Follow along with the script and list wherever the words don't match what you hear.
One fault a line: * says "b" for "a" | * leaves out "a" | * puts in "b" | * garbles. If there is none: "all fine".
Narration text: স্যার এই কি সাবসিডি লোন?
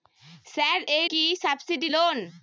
all fine